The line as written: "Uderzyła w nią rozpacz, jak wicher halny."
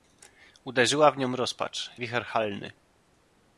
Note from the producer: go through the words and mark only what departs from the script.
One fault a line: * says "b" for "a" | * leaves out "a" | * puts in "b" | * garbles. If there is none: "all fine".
* leaves out "jak"